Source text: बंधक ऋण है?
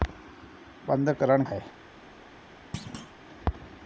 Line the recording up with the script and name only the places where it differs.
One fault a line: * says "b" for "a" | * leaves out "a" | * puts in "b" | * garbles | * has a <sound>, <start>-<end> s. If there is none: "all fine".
* has a thud, 2.7-3.1 s